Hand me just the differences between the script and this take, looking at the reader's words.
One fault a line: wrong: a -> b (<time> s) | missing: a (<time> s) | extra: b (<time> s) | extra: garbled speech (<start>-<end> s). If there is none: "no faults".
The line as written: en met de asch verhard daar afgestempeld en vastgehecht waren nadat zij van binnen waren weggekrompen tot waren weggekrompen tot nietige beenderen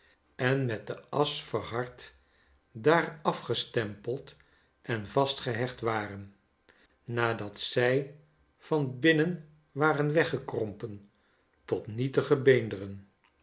missing: waren weggekrompen tot (11.9 s)